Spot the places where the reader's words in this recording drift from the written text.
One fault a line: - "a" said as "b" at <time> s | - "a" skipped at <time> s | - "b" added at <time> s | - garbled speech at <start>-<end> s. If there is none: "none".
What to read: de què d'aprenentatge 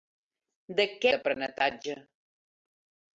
none